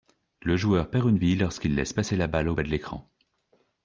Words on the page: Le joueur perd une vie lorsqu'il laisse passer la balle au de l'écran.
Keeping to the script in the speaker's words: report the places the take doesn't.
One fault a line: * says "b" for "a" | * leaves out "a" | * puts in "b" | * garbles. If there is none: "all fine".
* puts in "bas"